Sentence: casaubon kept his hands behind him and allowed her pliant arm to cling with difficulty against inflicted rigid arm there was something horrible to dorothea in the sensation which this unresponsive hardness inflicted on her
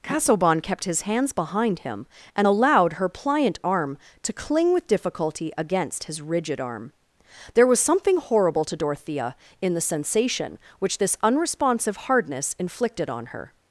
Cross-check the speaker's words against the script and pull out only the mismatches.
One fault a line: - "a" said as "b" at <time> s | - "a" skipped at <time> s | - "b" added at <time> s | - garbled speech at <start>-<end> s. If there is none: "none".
- "inflicted" said as "his" at 6.0 s